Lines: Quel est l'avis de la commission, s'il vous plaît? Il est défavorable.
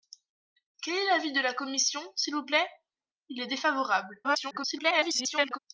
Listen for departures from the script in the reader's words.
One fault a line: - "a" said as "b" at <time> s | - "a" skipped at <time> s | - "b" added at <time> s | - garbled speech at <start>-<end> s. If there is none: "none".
- garbled speech at 4.2-5.6 s